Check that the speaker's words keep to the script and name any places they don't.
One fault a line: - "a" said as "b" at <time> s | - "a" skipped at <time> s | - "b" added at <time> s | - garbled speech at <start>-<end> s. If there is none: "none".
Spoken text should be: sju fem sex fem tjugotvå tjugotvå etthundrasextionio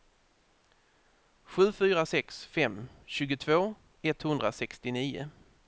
- "fem" said as "fyra" at 1.8 s
- "tjugotvå" skipped at 3.6 s